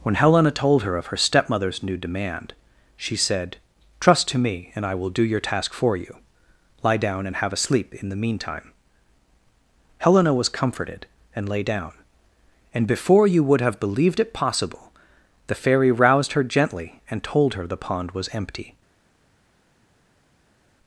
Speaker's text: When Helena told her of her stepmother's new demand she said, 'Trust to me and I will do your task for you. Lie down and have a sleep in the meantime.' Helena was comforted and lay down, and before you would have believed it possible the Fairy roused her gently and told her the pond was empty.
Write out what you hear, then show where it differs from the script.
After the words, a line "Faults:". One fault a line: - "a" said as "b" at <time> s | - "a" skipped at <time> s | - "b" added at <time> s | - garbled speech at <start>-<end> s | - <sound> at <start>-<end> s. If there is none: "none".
When Helena told her of her stepmother's new demand she said, 'Trust to me and I will do your task for you. Lie down and have a sleep in the meantime.' Helena was comforted and lay down, and before you would have believed it possible the Fairy roused her gently and told her the pond was empty.
Faults:
none